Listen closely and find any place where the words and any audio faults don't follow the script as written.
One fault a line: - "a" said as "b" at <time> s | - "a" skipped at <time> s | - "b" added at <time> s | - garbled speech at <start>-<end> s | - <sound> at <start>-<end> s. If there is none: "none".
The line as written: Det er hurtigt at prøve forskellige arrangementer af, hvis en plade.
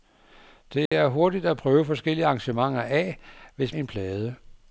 - dropout at 0.9-0.9 s